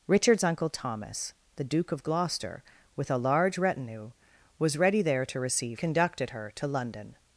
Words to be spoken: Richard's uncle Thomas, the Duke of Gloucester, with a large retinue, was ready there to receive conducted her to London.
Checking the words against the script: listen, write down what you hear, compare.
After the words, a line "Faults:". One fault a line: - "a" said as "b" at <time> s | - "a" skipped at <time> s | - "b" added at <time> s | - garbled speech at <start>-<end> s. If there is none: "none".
Richard's uncle Thomas, the Duke of Gloucester, with a large retinue, was ready there to receive conducted her to London.
Faults:
none